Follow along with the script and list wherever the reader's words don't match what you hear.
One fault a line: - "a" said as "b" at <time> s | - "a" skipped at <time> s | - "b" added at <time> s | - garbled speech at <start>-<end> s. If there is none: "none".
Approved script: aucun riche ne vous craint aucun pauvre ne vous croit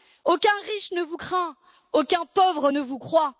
none